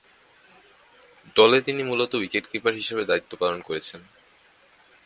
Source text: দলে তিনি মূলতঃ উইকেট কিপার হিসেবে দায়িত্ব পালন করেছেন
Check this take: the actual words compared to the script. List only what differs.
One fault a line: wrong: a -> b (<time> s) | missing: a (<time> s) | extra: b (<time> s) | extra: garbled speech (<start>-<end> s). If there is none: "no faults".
no faults